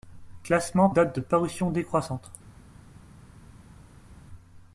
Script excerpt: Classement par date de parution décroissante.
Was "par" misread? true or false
true